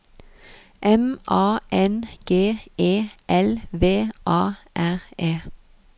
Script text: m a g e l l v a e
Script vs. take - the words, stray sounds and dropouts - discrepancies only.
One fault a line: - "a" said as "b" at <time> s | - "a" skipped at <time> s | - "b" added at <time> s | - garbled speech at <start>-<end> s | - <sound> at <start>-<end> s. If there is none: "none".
- "n" added at 1.7 s
- "l" skipped at 3.6 s
- "r" added at 4.7 s